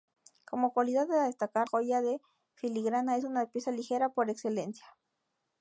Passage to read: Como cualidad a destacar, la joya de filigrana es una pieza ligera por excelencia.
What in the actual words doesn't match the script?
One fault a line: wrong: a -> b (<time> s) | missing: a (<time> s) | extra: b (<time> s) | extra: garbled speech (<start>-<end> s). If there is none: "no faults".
missing: la (1.7 s)